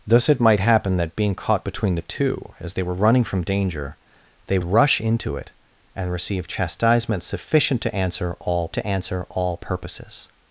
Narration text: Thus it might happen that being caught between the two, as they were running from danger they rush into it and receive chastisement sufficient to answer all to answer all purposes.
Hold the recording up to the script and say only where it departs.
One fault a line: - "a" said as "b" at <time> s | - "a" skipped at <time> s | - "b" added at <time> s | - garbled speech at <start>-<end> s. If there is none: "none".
none